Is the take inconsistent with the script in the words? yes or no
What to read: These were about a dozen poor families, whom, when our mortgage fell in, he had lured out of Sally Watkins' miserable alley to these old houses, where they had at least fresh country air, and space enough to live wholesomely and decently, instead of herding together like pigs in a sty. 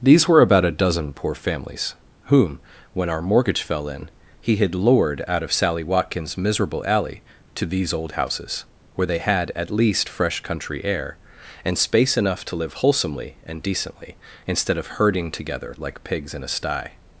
no